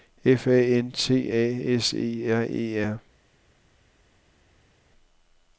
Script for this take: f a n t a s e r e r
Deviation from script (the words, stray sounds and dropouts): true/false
false